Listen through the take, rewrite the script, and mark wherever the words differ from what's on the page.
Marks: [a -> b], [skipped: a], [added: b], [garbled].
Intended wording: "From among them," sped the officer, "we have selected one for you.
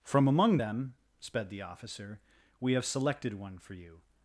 "From among them," sped the officer, "we have selected one for you.